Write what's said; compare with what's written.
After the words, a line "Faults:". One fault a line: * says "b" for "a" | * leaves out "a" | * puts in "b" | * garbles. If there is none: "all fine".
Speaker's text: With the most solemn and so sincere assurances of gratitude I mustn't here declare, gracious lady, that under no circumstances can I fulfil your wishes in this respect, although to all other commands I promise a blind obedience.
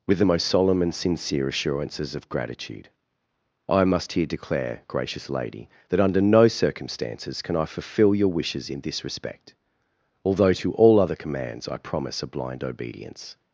With the most solemn and sincere assurances of gratitude I must here declare, gracious lady, that under no circumstances can I fulfil your wishes in this respect, although to all other commands I promise a blind obedience.
Faults:
* leaves out "so"
* says "must" for "mustn't"